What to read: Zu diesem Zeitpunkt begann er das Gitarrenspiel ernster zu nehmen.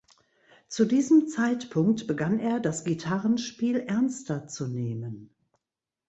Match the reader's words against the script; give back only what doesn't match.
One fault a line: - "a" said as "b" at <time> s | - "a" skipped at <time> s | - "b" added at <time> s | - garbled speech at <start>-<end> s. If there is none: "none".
none